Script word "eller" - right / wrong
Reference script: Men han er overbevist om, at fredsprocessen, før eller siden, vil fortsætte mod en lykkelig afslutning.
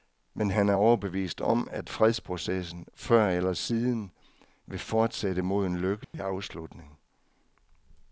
right